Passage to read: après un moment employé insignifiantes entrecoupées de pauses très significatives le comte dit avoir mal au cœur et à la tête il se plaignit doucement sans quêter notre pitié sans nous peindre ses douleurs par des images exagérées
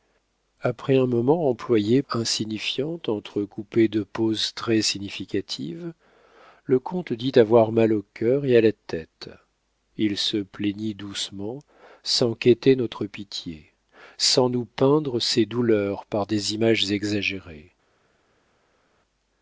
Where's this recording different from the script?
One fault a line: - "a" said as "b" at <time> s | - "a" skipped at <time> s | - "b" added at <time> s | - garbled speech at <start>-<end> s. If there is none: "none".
none